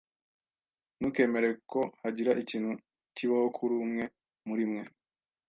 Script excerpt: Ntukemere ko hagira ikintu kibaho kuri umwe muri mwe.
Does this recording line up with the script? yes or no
yes